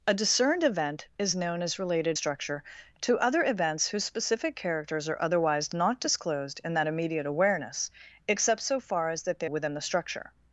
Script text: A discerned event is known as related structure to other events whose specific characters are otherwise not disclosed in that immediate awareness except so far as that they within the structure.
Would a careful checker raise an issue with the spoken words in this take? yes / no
no